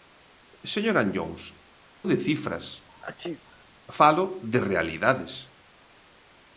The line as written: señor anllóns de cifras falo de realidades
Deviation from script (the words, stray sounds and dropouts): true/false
true